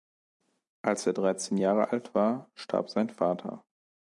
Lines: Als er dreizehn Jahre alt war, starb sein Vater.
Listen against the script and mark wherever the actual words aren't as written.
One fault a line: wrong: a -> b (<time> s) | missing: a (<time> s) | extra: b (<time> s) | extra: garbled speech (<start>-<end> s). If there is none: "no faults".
no faults